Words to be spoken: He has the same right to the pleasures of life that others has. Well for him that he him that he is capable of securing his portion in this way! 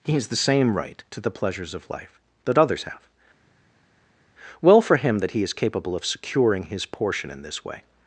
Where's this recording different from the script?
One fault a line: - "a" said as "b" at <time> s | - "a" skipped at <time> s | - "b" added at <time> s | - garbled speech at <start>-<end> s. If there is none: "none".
- "has" said as "have" at 2.8 s
- "him that he" skipped at 5.4 s